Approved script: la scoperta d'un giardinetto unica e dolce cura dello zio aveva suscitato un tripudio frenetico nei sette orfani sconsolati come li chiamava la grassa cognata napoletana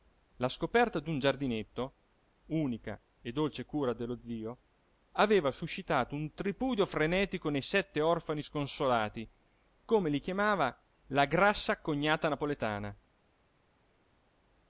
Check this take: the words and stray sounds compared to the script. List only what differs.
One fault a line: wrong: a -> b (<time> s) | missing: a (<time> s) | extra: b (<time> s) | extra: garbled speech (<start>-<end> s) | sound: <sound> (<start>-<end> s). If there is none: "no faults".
no faults